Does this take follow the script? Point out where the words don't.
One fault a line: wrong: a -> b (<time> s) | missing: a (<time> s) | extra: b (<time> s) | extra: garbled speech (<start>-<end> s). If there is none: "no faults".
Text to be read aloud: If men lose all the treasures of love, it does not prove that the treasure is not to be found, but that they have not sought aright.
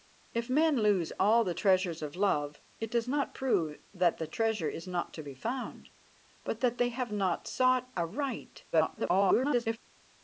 extra: garbled speech (8.7-9.8 s)